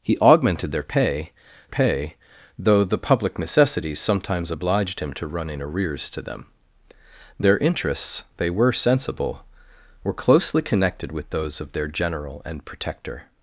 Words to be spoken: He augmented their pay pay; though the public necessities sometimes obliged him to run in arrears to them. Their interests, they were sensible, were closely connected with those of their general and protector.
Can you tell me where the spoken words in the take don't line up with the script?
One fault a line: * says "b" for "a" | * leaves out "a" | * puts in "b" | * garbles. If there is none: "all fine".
all fine